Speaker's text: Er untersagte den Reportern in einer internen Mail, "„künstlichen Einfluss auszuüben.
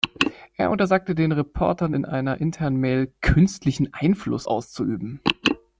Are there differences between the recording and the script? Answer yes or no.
no